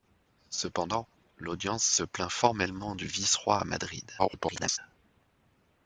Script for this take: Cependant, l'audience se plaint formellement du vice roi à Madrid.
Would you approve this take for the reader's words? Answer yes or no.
no